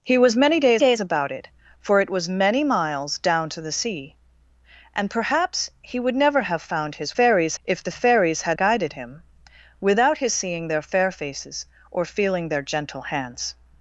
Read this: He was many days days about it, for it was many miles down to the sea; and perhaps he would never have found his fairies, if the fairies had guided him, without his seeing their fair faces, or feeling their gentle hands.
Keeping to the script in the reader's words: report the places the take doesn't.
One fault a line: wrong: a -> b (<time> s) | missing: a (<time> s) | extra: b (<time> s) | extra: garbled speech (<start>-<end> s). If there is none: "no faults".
no faults